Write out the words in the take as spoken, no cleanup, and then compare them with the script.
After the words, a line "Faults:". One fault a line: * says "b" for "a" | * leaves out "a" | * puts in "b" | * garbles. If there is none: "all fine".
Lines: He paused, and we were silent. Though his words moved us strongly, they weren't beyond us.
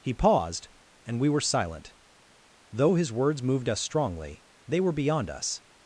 He paused, and we were silent. Though his words moved us strongly, they were beyond us.
Faults:
* says "were" for "weren't"